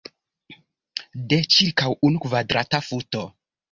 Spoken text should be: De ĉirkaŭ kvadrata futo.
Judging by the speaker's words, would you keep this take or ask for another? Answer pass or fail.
fail